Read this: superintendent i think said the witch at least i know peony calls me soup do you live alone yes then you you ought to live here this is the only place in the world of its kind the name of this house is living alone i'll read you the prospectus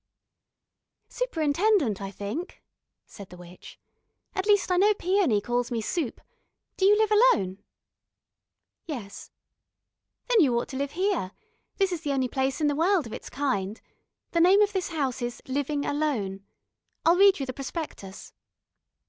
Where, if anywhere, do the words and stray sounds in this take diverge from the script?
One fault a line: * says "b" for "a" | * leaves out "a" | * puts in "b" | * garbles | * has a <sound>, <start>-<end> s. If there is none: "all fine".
* leaves out "you"